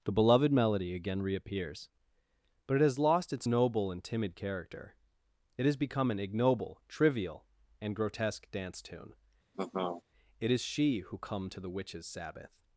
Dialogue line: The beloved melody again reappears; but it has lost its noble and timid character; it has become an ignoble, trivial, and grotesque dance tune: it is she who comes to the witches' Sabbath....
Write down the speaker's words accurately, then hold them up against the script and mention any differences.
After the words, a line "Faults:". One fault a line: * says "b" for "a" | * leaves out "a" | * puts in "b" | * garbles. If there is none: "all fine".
The beloved melody again reappears; but it has lost its noble and timid character; it has become an ignoble, trivial, and grotesque dance tune: it is she who come to the witches' Sabbath....
Faults:
* says "come" for "comes"